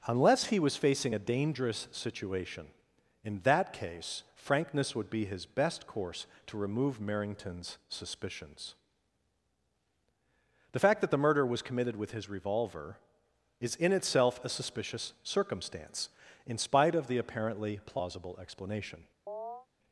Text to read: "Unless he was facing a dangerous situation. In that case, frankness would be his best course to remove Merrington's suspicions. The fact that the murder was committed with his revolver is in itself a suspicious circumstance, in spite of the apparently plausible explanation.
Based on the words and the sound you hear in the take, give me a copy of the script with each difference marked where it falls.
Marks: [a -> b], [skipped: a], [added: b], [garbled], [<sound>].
"Unless he was facing a dangerous situation. In that case, frankness would be his best course to remove Merrington's suspicions. The fact that the murder was committed with his revolver is in itself a suspicious circumstance, in spite of the apparently plausible explanation. [chirp]